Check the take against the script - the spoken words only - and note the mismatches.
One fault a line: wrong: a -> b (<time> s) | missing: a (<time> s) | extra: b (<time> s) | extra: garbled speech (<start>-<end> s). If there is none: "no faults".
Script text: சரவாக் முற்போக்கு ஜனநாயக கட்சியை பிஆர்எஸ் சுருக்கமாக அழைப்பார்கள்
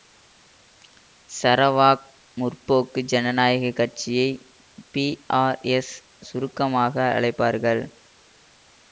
no faults